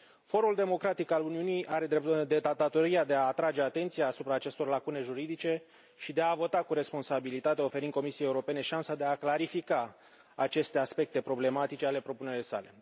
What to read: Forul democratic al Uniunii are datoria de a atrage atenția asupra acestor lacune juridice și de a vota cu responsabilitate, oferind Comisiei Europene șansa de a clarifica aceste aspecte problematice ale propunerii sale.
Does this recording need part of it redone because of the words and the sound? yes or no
no